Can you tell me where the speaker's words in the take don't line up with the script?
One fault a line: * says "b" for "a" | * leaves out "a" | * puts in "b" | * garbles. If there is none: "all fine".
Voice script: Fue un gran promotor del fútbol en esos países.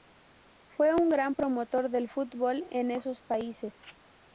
all fine